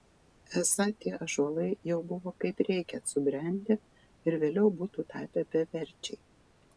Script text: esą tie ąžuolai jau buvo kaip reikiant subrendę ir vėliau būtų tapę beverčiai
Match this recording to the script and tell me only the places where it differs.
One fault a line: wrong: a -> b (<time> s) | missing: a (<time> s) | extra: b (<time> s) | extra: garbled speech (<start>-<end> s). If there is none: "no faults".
no faults